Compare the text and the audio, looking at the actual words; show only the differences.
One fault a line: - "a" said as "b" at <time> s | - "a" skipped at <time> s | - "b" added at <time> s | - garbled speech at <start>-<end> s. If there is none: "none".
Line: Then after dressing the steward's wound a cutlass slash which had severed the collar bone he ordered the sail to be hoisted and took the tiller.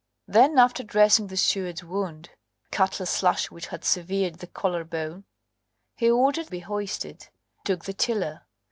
- "a" skipped at 2.3 s
- "the sail to" skipped at 6.5 s
- "and" skipped at 7.3 s